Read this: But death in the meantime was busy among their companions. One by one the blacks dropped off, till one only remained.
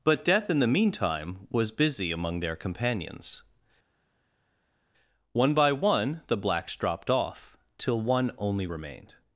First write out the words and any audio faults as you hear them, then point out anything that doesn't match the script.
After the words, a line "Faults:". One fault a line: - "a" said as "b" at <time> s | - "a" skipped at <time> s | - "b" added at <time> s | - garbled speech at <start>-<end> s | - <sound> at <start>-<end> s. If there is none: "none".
But death in the meantime was busy among their companions. One by one the blacks dropped off, till one only remained.
Faults:
none